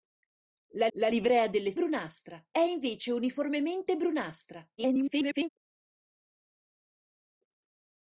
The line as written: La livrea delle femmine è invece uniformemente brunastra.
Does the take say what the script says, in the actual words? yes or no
no